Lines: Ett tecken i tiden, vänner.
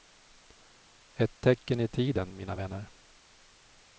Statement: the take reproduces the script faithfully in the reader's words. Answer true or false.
false